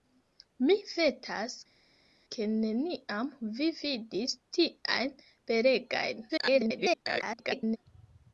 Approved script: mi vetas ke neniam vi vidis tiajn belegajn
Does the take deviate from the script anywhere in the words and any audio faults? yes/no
yes